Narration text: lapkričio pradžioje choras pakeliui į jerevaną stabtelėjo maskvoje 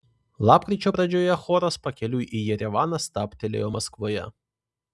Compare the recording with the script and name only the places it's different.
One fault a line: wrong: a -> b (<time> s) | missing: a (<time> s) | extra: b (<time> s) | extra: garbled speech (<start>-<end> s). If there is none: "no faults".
no faults